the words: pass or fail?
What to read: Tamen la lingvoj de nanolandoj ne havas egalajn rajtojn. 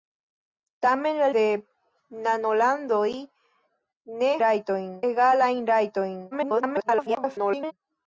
fail